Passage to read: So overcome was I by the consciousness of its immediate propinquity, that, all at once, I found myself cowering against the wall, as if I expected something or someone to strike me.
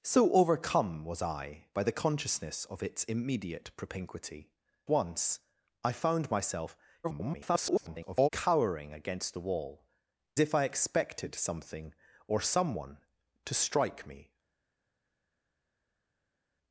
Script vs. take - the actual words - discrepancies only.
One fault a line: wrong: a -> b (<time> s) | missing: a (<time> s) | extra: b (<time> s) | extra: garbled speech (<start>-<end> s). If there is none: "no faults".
missing: that all at (4.5 s)
extra: garbled speech (7.0-8.3 s)
missing: as (9.9 s)